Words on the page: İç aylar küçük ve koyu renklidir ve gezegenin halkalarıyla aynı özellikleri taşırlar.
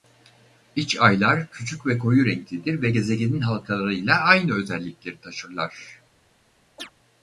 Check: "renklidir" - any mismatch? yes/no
no